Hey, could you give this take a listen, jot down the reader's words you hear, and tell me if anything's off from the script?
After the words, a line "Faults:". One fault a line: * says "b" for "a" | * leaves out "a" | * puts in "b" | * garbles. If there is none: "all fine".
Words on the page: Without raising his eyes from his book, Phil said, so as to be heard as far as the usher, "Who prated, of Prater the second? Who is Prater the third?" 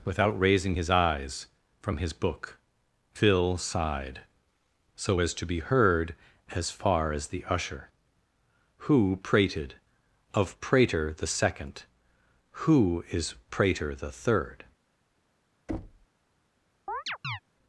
Without raising his eyes from his book, Phil sighed, so as to be heard as far as the usher, "Who prated, of Prater the second? Who is Prater the third?"
Faults:
* says "sighed" for "said"